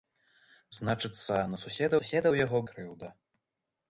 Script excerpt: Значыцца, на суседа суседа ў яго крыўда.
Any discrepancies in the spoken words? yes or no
no